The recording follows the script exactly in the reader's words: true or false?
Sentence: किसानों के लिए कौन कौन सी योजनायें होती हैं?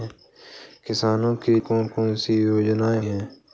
false